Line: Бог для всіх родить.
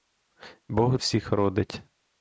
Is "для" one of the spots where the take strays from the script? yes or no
yes